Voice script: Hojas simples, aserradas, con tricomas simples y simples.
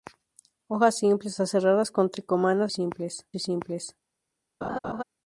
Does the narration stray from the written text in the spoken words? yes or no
no